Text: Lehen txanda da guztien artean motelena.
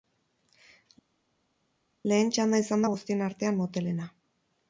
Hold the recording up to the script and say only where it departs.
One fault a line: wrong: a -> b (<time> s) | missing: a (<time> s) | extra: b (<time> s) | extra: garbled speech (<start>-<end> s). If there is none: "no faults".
extra: izan (2.6 s)